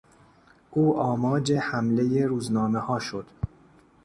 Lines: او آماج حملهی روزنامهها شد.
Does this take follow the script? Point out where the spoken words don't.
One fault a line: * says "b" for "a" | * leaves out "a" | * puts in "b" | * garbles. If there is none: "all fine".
all fine